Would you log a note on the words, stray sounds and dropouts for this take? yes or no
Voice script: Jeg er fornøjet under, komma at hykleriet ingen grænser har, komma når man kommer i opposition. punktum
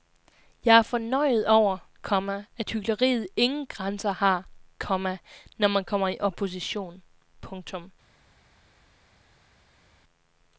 yes